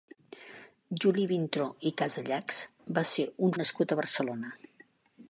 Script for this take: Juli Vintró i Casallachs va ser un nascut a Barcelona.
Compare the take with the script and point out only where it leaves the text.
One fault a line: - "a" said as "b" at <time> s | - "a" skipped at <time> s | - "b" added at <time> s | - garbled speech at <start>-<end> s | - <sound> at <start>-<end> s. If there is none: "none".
none